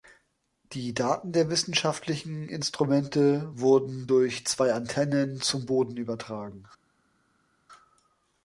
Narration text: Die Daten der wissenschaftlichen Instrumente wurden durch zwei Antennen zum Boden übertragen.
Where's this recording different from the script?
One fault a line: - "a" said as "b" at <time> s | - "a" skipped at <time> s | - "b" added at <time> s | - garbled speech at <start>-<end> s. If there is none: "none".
none